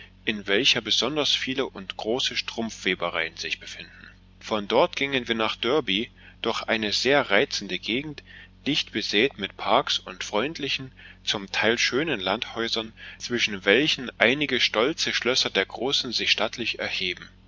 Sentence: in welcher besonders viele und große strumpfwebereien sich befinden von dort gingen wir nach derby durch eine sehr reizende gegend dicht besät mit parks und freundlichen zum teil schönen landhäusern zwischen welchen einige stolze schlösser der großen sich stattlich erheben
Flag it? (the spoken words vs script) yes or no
no